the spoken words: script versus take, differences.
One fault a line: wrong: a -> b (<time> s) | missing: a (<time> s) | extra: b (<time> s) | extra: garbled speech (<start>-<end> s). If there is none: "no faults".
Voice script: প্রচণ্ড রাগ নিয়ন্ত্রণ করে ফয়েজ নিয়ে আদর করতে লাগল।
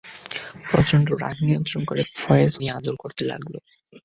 no faults